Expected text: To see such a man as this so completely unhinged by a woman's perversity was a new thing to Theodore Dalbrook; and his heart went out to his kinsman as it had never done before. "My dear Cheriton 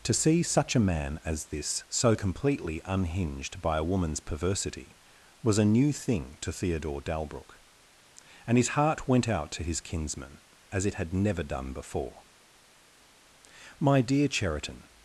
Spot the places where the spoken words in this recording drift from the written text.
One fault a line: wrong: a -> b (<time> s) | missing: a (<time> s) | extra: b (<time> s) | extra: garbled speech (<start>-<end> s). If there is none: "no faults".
no faults